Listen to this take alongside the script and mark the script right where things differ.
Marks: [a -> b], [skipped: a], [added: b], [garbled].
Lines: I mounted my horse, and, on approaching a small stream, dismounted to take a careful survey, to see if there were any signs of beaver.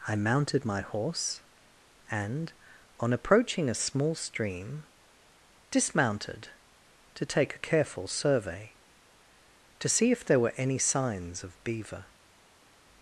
I mounted my horse, and, on approaching a small stream, dismounted to take a careful survey, to see if there were any signs of beaver.